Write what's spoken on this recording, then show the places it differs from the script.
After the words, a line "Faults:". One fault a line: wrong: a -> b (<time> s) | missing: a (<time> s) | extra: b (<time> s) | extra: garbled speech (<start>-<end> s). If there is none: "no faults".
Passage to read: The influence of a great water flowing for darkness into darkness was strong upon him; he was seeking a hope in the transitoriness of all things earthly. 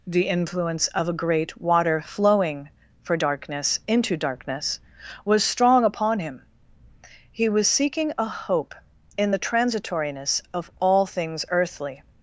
The influence of a great water flowing for darkness into darkness was strong upon him; he was seeking a hope in the transitoriness of all things earthly.
Faults:
no faults